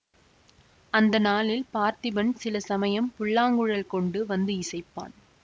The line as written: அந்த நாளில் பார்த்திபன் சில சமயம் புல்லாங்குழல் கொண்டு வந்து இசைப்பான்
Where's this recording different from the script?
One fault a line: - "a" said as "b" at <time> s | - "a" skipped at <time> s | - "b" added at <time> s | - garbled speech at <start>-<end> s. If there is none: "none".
none